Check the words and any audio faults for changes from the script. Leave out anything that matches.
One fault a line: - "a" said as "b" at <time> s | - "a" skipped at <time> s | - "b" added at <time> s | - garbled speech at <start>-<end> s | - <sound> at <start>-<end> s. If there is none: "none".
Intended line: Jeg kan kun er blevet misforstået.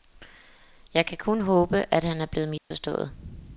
- "håbe at han" added at 1.4 s
- dropout at 2.6-2.7 s